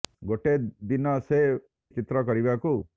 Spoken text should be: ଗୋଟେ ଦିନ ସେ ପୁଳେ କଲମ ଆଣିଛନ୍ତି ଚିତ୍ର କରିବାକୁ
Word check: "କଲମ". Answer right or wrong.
wrong